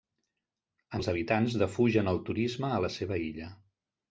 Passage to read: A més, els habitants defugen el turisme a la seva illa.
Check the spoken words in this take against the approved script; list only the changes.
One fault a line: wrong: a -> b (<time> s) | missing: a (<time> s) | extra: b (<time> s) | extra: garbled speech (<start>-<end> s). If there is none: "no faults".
missing: més (1.0 s)